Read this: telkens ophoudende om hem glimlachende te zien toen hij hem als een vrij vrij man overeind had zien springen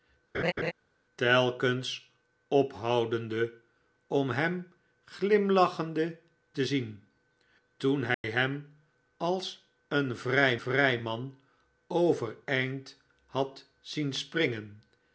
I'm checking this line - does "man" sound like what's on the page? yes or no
yes